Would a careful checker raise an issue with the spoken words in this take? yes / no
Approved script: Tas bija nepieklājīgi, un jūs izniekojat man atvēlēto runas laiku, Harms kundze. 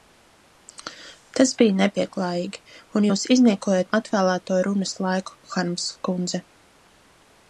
yes